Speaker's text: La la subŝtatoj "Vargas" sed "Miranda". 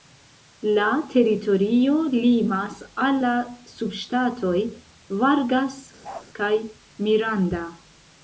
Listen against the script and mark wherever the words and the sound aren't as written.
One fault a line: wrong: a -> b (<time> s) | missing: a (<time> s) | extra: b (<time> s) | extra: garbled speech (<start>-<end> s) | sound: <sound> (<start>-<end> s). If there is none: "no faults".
extra: teritorio limas al (1.1 s)
sound: bark (6.0-6.3 s)
wrong: sed -> kaj (6.4 s)